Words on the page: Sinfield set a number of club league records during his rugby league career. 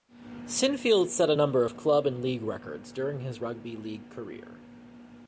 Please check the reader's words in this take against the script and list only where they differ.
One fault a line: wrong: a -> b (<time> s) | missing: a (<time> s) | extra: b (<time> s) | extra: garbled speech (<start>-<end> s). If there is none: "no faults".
extra: and (2.1 s)